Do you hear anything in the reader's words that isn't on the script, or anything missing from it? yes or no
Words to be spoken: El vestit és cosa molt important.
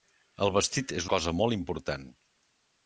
no